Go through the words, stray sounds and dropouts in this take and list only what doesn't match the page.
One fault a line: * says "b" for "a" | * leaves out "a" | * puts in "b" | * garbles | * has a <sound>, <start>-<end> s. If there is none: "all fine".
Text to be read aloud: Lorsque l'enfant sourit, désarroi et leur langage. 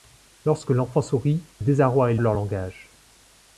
all fine